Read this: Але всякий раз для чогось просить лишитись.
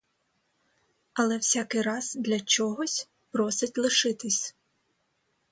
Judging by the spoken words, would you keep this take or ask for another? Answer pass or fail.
pass